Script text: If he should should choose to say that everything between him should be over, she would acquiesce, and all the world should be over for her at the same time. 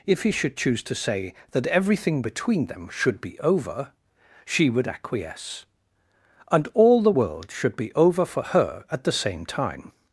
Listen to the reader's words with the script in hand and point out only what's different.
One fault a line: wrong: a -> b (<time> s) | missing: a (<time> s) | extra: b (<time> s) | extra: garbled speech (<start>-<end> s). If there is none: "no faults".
missing: should (0.6 s)
wrong: him -> them (2.7 s)